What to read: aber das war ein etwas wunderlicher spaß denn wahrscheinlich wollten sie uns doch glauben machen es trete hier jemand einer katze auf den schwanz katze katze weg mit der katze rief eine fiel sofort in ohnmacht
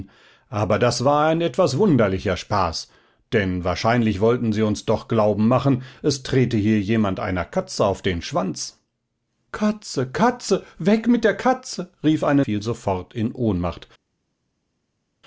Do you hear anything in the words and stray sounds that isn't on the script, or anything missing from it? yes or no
no